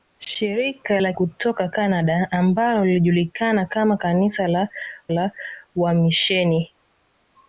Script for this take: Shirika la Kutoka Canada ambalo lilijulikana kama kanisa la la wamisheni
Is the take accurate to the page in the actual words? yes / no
yes